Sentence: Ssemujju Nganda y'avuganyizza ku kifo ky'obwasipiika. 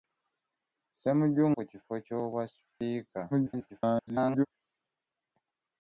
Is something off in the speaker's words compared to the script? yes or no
yes